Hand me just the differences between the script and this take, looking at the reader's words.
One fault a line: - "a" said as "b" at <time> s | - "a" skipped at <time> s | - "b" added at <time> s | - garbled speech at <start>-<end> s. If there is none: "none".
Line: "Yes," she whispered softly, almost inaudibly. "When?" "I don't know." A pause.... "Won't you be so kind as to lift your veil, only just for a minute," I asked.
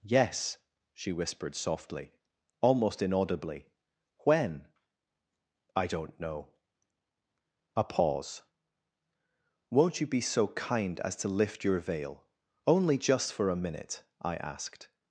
none